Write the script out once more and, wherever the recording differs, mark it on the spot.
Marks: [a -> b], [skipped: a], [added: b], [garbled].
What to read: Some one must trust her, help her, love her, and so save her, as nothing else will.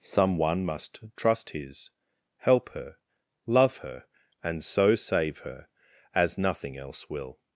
Some one must trust [her, -> his] help her, love her, and so save her, as nothing else will.